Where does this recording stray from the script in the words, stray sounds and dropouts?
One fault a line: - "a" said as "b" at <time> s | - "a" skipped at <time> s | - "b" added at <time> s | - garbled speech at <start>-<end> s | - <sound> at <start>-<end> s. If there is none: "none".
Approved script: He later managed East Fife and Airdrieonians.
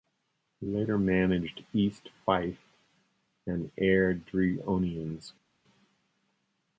none